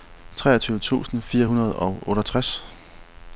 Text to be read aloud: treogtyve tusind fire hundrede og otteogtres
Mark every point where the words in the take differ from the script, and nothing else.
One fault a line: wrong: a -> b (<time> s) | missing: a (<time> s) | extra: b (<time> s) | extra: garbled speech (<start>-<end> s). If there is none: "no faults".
no faults